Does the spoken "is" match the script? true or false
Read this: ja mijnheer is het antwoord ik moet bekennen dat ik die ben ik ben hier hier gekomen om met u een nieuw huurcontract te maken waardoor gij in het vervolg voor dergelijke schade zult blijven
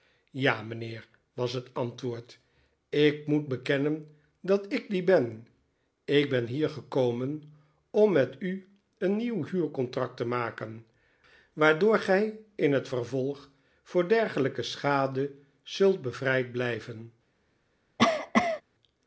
false